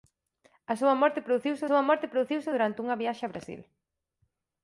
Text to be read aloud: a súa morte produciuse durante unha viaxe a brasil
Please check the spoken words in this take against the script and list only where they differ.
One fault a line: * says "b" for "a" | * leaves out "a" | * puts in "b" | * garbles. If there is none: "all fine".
* puts in "súa morte produciuse"